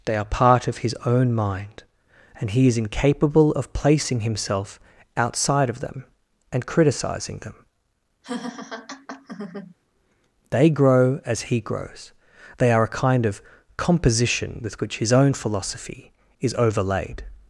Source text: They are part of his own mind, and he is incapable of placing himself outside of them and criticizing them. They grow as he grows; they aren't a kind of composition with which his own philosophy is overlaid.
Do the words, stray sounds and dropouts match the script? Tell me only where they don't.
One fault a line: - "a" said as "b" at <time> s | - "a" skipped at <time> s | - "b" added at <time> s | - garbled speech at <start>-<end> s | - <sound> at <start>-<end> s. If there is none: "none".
- laugh at 8.2-9.7 s
- "aren't" said as "are" at 12.7 s